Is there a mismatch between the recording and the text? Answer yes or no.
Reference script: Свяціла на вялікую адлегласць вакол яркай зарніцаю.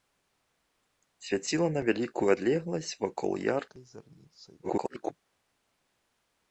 yes